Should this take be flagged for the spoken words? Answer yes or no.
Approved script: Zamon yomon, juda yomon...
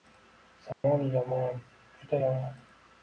no